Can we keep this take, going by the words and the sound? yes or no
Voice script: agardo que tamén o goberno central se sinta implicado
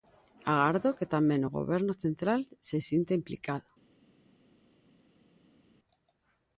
yes